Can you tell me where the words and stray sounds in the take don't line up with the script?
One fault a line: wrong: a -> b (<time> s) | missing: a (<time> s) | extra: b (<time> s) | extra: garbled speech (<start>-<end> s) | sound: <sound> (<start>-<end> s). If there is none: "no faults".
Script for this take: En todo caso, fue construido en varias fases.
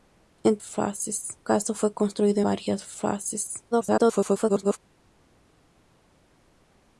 wrong: todo -> fases (0.6 s)
missing: en (2.4 s)
extra: garbled speech (3.7-4.8 s)